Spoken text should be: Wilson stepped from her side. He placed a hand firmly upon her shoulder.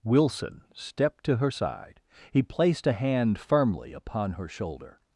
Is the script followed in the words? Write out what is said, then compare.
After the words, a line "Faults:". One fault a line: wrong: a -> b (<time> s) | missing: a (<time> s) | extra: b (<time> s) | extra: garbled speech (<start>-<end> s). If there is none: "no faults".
Wilson stepped to her side. He placed a hand firmly upon her shoulder.
Faults:
wrong: from -> to (1.2 s)